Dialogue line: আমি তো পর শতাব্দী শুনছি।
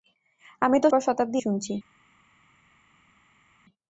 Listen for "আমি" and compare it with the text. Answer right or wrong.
right